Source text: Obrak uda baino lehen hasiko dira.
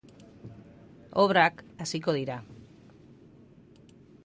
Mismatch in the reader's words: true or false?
true